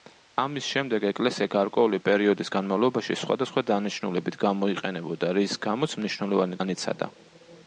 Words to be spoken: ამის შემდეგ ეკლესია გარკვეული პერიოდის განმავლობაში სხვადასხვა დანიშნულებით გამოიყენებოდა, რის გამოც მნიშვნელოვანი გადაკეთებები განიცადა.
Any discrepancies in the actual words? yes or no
yes